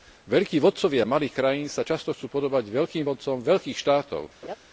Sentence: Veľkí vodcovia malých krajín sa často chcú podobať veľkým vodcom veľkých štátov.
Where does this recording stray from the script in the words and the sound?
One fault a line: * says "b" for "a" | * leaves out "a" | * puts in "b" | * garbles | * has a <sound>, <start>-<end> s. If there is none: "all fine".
* has a laugh, 4.4-4.6 s